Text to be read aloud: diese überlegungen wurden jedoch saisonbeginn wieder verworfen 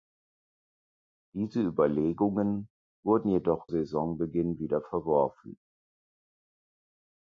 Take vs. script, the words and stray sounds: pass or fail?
pass